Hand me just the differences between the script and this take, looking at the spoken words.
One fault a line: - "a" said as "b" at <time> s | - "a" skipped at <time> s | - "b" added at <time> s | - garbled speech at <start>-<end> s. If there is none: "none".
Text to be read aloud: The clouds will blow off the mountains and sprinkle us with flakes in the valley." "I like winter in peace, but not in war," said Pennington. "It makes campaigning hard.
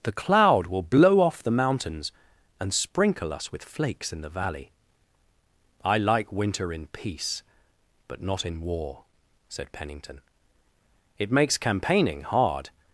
- "clouds" said as "cloud" at 0.1 s